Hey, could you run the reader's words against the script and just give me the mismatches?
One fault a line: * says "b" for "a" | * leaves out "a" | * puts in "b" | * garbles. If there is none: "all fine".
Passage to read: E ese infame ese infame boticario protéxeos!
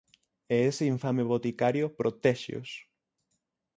* leaves out "ese infame"